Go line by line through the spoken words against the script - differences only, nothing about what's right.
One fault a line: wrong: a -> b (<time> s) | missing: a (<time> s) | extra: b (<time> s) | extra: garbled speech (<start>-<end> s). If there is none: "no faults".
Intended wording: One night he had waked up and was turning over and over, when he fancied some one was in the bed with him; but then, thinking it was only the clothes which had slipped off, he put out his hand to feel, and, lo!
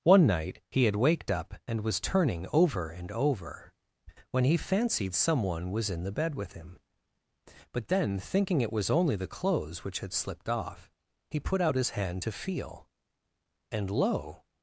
no faults